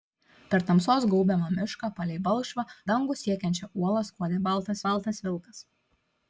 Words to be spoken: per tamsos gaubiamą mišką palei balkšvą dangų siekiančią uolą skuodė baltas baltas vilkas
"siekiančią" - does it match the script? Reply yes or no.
yes